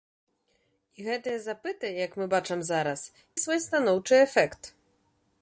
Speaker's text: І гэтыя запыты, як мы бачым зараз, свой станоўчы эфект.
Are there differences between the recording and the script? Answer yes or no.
no